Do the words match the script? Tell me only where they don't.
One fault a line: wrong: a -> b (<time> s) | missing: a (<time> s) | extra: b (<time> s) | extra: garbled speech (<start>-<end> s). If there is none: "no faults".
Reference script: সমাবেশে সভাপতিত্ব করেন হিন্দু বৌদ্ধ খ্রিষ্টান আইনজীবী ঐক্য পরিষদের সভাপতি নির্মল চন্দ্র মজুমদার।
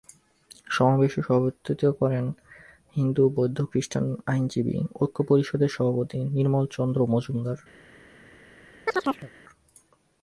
no faults